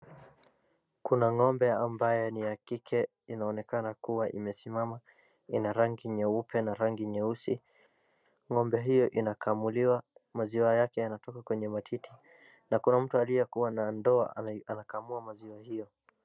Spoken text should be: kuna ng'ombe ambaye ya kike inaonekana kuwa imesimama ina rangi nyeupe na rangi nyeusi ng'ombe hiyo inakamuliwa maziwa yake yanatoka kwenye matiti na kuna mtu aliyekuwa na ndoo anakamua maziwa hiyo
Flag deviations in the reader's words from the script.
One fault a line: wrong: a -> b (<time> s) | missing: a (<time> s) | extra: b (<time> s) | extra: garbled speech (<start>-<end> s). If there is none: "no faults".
extra: ni (2.3 s)